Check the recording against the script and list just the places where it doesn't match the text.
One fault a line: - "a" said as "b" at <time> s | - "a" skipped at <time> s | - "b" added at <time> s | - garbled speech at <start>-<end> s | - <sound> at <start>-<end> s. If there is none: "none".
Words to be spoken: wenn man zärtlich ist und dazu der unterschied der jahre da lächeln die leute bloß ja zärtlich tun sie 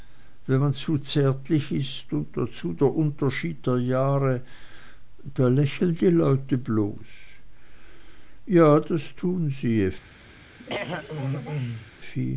- "zu" added at 0.7 s
- "zärtlich" said as "das" at 8.8 s
- throat clearing at 10.6-11.9 s